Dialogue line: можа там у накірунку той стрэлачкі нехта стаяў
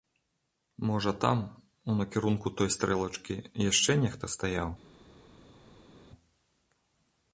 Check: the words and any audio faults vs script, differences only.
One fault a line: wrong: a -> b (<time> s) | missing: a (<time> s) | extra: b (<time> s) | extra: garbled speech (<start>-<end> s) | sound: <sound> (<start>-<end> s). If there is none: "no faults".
extra: яшчэ (3.7 s)